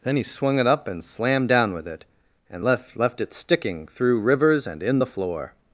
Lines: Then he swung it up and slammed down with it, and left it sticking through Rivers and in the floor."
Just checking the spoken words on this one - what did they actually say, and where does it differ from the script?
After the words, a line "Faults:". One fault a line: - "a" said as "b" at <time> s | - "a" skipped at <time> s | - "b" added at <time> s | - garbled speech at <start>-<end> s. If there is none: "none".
Then he swung it up and slammed down with it, and left left it sticking through Rivers and in the floor."
Faults:
- "left" added at 3.0 s